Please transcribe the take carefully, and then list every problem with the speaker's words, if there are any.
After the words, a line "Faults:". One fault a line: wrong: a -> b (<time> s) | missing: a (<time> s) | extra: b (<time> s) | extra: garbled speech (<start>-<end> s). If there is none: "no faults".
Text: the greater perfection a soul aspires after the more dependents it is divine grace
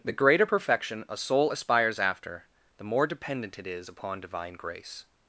the greater perfection a soul aspires after the more dependent it is upon divine grace
Faults:
wrong: dependents -> dependent (3.1 s)
extra: upon (3.9 s)